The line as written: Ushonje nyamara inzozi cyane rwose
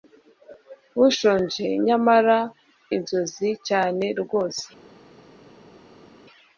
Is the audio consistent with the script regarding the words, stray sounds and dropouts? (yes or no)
yes